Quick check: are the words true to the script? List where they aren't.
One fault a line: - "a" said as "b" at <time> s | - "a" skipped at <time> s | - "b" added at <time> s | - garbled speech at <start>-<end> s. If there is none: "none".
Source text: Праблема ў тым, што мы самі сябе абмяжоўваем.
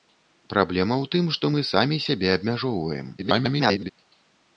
- garbled speech at 3.2-3.9 s